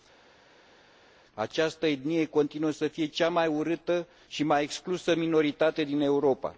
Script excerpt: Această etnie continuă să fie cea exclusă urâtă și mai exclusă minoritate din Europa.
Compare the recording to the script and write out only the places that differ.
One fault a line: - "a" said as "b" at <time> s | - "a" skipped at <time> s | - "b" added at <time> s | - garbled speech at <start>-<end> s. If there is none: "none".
- "exclusă" said as "mai" at 3.3 s